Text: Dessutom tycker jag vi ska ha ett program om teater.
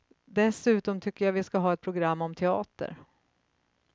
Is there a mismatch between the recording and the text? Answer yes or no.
no